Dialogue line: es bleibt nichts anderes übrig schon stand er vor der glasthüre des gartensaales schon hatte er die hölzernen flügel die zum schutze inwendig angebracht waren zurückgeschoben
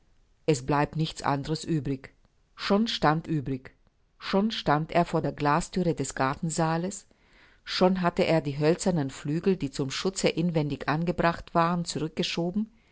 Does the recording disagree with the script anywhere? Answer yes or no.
yes